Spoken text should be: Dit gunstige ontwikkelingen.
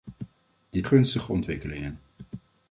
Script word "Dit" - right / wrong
right